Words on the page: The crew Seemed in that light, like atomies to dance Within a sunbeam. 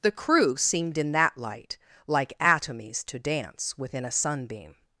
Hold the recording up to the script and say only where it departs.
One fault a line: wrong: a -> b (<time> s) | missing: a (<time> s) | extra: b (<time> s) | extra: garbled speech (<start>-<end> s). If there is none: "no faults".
no faults